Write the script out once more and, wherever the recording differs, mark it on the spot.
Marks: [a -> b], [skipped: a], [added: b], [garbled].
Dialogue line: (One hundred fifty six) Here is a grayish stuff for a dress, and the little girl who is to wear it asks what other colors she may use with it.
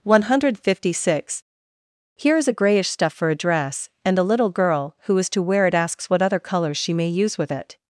(One hundred fifty six) Here is a grayish stuff for a dress, and the little girl who is to wear it asks what other colors she may use with it.